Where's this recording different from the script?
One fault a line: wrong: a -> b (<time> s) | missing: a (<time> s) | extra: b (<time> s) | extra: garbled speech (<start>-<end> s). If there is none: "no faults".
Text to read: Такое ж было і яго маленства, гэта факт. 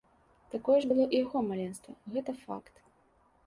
no faults